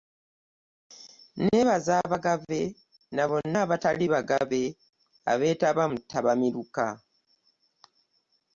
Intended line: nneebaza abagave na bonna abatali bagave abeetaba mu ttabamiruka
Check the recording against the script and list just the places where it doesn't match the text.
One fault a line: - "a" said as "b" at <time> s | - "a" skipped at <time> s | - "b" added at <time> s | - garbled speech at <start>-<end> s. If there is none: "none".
none